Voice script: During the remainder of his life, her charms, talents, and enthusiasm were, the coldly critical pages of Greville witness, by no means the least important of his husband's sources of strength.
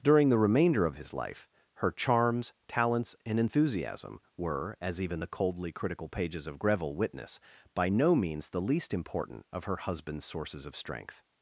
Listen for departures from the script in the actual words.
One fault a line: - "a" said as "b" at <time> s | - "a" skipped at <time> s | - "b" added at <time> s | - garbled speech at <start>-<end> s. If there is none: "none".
- "as even" added at 4.8 s
- "his" said as "her" at 9.6 s